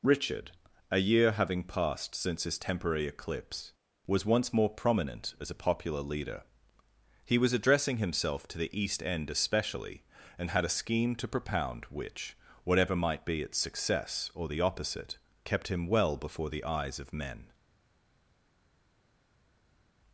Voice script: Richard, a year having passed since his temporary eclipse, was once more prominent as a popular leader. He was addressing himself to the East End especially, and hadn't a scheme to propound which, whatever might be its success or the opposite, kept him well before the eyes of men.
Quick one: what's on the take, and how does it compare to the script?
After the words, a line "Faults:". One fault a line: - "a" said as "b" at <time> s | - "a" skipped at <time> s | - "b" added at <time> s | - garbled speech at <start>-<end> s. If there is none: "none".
Richard, a year having passed since his temporary eclipse, was once more prominent as a popular leader. He was addressing himself to the East End especially, and had a scheme to propound which, whatever might be its success or the opposite, kept him well before the eyes of men.
Faults:
- "hadn't" said as "had" at 10.5 s